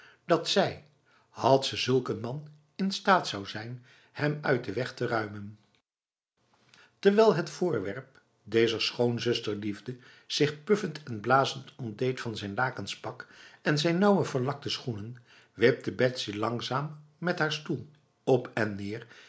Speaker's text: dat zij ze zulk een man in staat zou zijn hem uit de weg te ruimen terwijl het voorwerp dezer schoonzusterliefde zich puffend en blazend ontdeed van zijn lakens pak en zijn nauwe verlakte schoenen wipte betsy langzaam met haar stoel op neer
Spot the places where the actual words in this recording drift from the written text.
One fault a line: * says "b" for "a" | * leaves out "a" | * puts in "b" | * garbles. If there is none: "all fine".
* puts in "had"
* puts in "en"